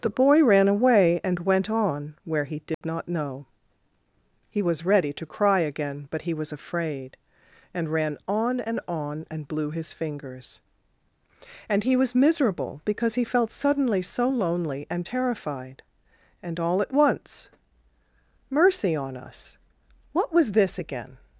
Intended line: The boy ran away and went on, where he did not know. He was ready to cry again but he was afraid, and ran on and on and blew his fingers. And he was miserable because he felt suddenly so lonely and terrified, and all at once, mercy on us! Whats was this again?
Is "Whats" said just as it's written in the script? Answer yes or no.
no